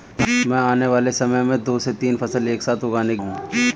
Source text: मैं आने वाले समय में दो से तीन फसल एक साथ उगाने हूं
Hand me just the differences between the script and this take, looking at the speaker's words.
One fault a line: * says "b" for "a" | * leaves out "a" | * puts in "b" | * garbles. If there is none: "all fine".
all fine